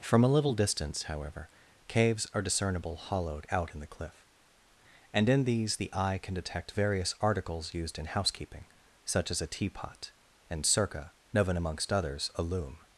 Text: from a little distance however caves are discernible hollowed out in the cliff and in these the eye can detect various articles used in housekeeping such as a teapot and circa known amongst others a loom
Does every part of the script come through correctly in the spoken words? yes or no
yes